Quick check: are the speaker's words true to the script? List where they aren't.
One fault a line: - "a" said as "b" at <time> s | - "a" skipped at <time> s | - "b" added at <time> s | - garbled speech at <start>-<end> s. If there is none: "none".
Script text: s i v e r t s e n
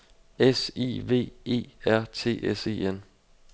none